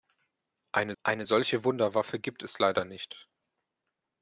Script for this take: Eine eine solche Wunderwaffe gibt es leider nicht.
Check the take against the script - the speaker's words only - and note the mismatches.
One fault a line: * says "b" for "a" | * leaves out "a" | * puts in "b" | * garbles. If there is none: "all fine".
all fine